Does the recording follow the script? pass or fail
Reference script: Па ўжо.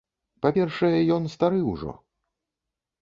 fail